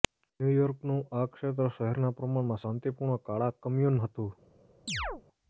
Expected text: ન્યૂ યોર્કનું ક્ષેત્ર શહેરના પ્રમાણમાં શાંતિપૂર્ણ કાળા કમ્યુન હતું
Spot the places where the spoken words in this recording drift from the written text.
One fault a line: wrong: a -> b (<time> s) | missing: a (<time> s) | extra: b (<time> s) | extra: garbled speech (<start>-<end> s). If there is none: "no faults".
extra: આ (1.1 s)